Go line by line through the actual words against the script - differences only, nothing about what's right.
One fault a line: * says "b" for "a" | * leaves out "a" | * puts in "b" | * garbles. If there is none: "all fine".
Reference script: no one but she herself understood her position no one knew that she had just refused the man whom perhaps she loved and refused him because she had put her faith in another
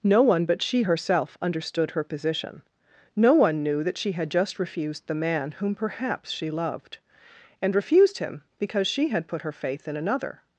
all fine